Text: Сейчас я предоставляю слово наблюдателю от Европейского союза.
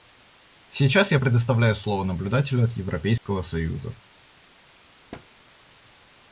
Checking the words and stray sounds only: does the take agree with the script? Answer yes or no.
no